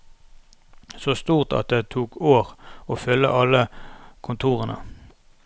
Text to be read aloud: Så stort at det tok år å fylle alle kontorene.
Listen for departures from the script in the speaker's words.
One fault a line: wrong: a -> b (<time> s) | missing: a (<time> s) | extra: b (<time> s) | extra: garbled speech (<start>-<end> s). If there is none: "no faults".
no faults